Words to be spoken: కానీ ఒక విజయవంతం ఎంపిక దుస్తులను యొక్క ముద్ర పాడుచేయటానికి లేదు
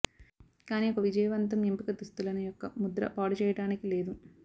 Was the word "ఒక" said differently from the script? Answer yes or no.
no